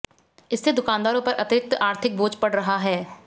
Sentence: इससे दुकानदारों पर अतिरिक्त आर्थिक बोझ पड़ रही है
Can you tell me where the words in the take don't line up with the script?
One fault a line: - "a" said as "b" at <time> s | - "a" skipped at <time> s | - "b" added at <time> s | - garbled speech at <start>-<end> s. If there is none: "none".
- "रही" said as "रहा" at 2.5 s